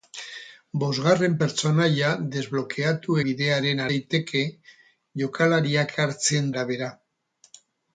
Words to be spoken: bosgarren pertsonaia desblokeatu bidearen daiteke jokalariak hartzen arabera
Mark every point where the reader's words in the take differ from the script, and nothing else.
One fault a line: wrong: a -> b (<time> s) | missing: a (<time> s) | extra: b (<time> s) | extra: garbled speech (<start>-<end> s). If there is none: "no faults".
no faults